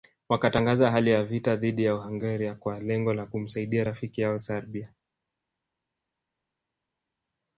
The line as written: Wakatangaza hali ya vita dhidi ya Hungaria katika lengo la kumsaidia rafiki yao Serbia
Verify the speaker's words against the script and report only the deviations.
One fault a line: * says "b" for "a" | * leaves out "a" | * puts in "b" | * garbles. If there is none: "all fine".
* says "kwa" for "katika"